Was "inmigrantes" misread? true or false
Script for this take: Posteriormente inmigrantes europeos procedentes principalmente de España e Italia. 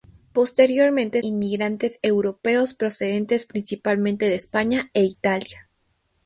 false